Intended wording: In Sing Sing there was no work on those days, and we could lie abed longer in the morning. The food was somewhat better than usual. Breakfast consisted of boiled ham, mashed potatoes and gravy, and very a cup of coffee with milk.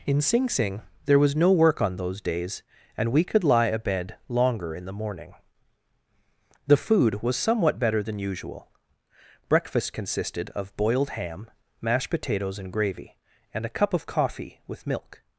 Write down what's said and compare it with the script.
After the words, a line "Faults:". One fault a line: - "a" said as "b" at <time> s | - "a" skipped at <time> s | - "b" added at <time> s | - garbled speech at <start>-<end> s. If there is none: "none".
In Sing Sing there was no work on those days, and we could lie abed longer in the morning. The food was somewhat better than usual. Breakfast consisted of boiled ham, mashed potatoes and gravy, and a cup of coffee with milk.
Faults:
- "very" skipped at 13.7 s